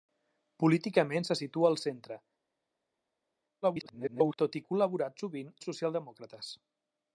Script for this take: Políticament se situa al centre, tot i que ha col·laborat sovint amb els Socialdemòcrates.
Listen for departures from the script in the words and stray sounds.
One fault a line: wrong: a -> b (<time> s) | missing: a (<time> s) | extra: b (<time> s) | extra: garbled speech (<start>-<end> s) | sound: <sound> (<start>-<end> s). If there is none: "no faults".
extra: garbled speech (3.6-4.4 s)
missing: que (4.6 s)
missing: amb (5.5 s)